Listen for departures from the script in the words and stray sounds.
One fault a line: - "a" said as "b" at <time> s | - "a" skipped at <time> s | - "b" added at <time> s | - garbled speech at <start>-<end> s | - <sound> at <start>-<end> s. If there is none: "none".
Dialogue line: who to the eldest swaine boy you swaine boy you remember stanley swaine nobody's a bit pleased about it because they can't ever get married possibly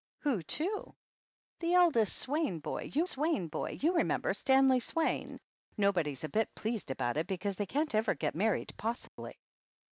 - dropout at 9.1-9.2 s